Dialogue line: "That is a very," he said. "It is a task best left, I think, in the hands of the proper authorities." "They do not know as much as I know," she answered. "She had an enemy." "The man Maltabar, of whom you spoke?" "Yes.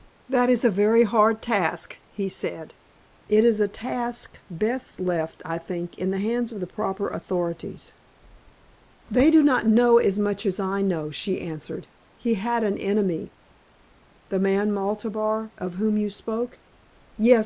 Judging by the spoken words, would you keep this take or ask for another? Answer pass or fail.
fail